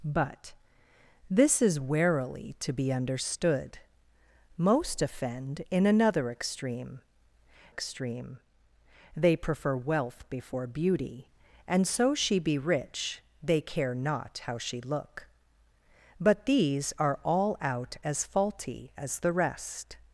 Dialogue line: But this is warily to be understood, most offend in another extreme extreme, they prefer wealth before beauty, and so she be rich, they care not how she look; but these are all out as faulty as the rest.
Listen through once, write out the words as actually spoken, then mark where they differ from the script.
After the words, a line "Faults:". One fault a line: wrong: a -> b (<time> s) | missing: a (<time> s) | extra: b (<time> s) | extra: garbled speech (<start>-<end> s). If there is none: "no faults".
But this is warily to be understood, most offend in another extreme extreme, they prefer wealth before beauty, and so she be rich, they care not how she look; but these are all out as faulty as the rest.
Faults:
no faults